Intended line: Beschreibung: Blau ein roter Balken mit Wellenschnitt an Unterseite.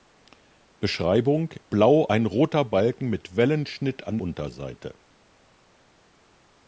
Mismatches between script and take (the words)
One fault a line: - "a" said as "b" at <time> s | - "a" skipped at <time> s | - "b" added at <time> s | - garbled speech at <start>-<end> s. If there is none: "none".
none